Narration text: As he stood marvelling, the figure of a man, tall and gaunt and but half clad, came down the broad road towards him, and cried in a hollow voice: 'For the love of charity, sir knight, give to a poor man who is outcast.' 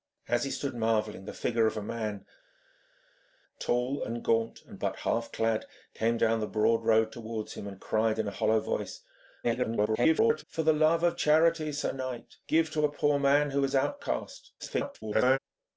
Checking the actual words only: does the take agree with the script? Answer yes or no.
no